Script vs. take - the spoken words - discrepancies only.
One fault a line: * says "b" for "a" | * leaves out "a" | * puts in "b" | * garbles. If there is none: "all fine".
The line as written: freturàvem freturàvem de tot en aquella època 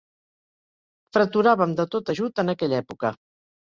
* leaves out "freturàvem"
* puts in "ajut"